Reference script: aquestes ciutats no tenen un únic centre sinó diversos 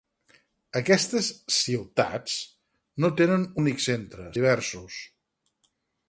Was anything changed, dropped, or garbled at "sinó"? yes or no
yes